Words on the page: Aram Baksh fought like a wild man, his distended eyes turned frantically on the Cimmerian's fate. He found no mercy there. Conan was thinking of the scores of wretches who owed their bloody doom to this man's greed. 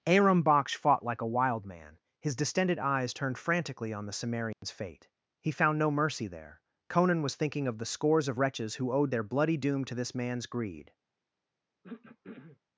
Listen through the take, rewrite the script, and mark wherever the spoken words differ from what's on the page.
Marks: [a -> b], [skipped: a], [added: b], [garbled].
Aram Baksh fought like a wild man, his distended eyes turned frantically on the Cimmerian's fate. He found no mercy there. Conan was thinking of the scores of wretches who owed their bloody doom to this man's greed.